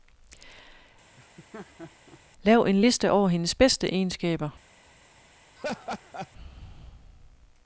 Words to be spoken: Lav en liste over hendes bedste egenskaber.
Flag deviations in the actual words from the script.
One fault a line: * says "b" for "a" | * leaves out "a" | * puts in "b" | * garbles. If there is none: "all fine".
all fine